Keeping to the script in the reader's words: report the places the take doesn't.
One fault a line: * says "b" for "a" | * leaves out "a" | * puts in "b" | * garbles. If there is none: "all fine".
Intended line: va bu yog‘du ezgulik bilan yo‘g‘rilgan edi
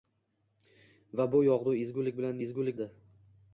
* says "ezgulik" for "yo‘g‘rilgan"